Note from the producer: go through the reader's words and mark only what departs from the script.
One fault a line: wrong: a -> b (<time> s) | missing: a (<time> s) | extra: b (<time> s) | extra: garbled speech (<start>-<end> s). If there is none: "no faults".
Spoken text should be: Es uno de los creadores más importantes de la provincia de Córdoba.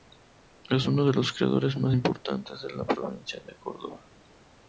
no faults